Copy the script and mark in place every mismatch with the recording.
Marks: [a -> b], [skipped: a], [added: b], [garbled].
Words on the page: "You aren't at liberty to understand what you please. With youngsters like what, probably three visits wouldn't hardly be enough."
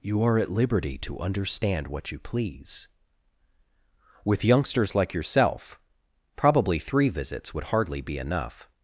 "You [aren't -> are] at liberty to understand what you please. With youngsters like [what, -> yourself] probably three visits [wouldn't -> would] hardly be enough."